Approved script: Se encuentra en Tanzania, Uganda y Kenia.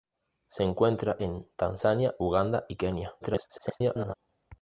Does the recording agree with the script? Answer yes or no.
no